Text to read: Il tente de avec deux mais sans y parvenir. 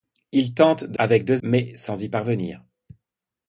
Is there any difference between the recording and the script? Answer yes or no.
no